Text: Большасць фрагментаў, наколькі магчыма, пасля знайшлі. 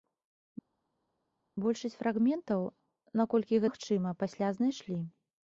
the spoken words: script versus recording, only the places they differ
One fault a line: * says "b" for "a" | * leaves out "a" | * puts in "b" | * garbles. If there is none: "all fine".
all fine